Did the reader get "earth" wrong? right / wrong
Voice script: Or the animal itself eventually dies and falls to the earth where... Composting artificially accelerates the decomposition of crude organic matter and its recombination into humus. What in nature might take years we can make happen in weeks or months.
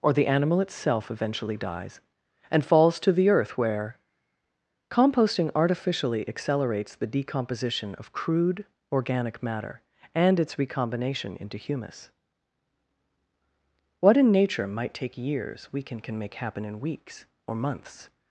right